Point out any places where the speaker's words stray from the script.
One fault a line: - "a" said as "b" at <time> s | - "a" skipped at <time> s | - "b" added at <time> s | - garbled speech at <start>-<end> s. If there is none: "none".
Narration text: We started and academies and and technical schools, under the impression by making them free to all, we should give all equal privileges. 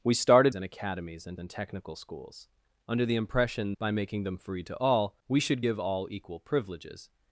none